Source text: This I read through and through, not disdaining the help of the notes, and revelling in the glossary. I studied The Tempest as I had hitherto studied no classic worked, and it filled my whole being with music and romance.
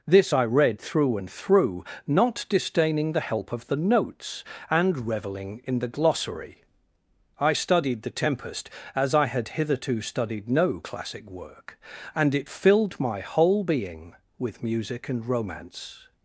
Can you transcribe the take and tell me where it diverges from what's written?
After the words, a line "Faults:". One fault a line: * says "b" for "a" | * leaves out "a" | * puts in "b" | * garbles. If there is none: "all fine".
This I read through and through, not disdaining the help of the notes, and revelling in the glossary. I studied The Tempest as I had hitherto studied no classic work, and it filled my whole being with music and romance.
Faults:
* says "work" for "worked"